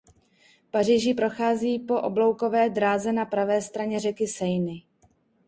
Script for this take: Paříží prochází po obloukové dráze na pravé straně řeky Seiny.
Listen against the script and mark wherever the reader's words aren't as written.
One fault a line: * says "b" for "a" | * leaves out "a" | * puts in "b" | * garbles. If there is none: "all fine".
all fine